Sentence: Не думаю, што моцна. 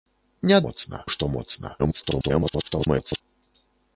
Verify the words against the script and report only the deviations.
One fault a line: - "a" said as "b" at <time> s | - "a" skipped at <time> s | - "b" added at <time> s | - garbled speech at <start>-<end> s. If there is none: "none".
- "думаю" said as "моцна" at 0.6 s
- garbled speech at 1.8-3.2 s